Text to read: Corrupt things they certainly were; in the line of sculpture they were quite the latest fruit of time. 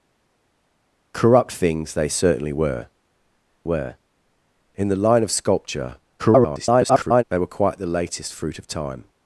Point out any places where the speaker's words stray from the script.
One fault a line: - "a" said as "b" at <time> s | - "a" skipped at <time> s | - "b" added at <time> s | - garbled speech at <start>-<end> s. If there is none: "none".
- "were" added at 3.6 s
- garbled speech at 6.2-7.2 s